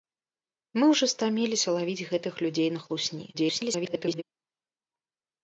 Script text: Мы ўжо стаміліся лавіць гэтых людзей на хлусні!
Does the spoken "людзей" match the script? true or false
true